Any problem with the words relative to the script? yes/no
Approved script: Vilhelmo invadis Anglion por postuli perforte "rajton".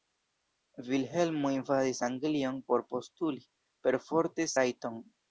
no